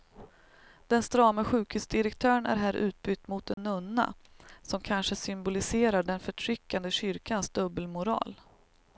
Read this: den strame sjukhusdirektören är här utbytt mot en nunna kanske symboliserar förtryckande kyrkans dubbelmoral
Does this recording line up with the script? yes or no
no